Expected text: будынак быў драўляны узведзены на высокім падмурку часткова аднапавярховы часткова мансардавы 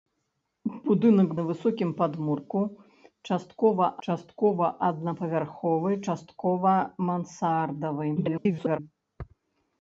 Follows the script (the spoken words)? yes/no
no